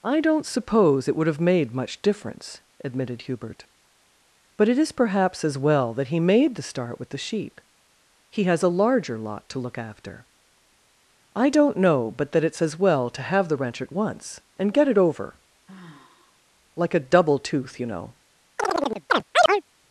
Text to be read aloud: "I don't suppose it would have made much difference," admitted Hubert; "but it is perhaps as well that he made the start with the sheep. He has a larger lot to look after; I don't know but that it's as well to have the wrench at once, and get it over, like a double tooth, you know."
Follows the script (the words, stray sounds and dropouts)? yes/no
no